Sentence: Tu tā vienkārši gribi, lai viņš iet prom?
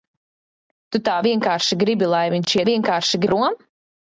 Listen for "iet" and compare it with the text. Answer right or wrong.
wrong